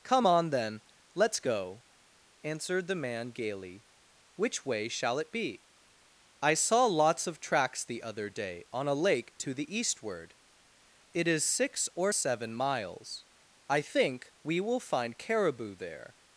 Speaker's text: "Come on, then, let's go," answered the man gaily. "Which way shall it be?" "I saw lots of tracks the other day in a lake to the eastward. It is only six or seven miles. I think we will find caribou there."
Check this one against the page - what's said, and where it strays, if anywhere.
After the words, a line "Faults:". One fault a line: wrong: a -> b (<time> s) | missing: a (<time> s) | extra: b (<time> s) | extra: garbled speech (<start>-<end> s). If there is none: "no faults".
"Come on, then, let's go," answered the man gaily. "Which way shall it be?" "I saw lots of tracks the other day on a lake to the eastward. It is six or seven miles. I think we will find caribou there."
Faults:
wrong: in -> on (8.7 s)
missing: only (11.5 s)